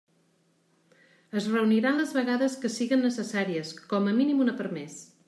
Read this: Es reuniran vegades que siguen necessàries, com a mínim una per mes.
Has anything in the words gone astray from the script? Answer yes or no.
yes